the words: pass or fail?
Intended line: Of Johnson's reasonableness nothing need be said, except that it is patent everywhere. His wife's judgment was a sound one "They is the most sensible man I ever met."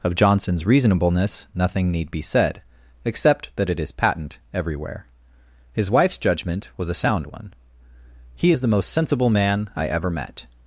fail